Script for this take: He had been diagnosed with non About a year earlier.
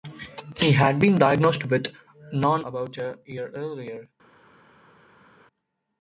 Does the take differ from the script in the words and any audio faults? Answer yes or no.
no